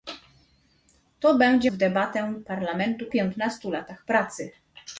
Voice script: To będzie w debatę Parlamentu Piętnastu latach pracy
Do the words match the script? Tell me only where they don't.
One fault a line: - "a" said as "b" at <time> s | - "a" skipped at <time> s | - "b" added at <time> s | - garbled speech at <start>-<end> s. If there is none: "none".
none